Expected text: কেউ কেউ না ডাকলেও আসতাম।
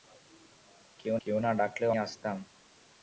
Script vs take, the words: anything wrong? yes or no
no